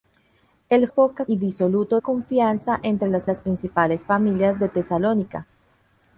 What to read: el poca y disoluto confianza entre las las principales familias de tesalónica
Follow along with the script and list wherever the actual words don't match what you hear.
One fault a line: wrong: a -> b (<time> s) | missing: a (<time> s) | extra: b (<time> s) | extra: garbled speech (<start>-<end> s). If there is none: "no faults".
no faults